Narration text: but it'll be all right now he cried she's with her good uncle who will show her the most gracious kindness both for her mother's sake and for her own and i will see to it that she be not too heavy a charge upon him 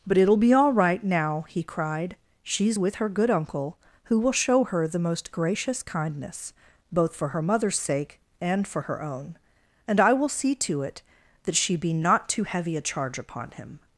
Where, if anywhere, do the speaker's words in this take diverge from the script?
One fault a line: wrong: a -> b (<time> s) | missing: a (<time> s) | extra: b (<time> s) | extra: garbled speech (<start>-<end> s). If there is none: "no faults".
no faults